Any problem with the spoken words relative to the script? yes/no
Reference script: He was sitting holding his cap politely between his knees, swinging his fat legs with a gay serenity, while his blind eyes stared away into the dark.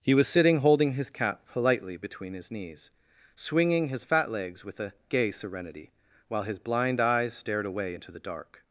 no